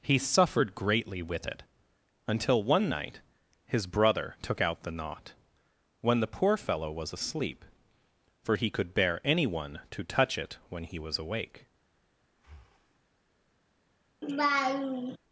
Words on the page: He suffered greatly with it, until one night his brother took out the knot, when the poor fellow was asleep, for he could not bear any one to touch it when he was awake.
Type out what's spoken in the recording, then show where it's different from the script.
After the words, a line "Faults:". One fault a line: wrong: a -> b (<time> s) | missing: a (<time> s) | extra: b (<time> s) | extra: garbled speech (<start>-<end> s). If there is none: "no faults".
He suffered greatly with it, until one night his brother took out the knot, when the poor fellow was asleep, for he could bear any one to touch it when he was awake.
Faults:
missing: not (8.9 s)